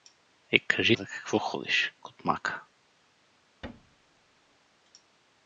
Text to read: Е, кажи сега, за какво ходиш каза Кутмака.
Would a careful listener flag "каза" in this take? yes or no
yes